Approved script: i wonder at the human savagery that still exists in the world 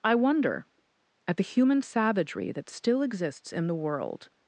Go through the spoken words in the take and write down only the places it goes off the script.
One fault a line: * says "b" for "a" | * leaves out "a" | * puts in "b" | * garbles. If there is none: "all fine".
all fine